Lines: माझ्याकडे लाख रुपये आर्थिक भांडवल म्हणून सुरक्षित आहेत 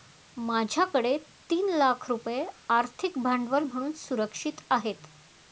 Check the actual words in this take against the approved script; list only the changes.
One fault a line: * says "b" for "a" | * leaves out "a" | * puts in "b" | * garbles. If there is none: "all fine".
* puts in "तीन"